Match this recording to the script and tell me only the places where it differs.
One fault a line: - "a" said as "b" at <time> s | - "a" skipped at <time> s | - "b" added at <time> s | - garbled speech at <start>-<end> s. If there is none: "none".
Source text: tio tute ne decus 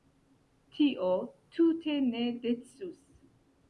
none